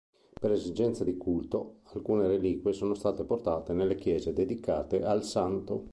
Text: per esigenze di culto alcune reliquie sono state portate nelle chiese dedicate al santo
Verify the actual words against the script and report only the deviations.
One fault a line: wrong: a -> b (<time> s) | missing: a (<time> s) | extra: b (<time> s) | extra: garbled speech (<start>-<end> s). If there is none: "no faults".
no faults